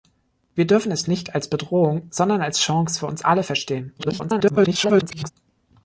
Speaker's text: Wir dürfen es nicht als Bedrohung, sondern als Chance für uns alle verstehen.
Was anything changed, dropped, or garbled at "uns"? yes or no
no